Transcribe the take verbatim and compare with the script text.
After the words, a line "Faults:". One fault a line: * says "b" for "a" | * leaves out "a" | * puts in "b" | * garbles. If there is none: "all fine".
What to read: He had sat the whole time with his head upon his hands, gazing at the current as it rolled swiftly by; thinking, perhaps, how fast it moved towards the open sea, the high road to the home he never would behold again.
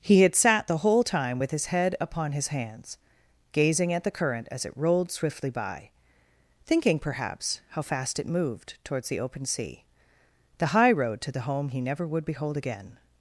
He had sat the whole time with his head upon his hands, gazing at the current as it rolled swiftly by; thinking, perhaps, how fast it moved towards the open sea, the high road to the home he never would behold again.
Faults:
all fine